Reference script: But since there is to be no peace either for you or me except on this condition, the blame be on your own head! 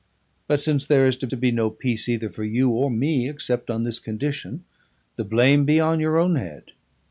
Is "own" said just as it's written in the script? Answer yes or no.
yes